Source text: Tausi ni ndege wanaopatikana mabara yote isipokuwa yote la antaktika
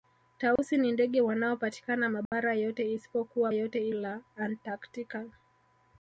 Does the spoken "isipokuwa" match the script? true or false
true